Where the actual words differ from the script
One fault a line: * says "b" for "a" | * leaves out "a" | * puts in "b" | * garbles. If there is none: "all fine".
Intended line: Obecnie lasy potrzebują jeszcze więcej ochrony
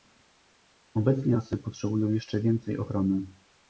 all fine